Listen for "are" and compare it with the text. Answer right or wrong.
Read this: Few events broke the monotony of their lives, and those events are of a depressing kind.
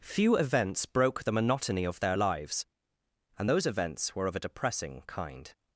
wrong